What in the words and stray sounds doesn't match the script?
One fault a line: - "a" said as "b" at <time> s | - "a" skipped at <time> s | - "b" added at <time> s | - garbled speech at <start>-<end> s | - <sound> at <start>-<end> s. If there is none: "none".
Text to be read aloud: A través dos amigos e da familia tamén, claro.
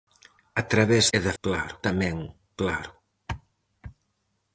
- "dos amigos" skipped at 1.1 s
- "familia" said as "claro" at 1.4 s